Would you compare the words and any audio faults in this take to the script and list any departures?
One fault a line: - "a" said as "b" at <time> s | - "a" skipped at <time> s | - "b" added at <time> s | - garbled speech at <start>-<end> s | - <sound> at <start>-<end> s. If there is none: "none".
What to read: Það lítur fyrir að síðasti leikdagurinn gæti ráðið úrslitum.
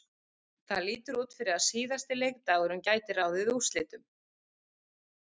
- "út" added at 1.2 s